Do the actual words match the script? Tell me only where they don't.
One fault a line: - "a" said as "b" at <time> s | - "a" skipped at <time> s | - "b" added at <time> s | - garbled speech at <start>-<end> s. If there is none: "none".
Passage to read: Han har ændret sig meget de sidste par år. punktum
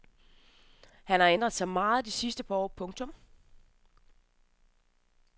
none